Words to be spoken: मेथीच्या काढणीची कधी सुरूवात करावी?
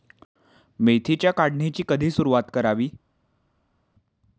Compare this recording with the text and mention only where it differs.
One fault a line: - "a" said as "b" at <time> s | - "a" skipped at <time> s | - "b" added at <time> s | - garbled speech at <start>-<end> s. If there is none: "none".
none